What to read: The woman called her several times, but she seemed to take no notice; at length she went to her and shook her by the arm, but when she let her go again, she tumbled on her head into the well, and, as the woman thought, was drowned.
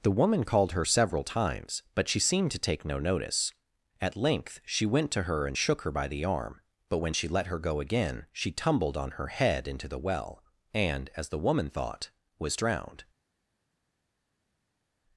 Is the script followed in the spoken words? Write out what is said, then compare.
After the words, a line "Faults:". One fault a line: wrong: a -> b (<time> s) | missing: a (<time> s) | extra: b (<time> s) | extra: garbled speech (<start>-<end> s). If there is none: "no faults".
The woman called her several times, but she seemed to take no notice; at length she went to her and shook her by the arm, but when she let her go again, she tumbled on her head into the well, and, as the woman thought, was drowned.
Faults:
no faults